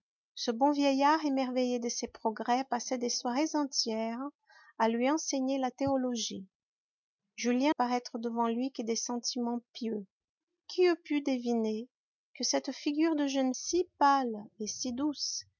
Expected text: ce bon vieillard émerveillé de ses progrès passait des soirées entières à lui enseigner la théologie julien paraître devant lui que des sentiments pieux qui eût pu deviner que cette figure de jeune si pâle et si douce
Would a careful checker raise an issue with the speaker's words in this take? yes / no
no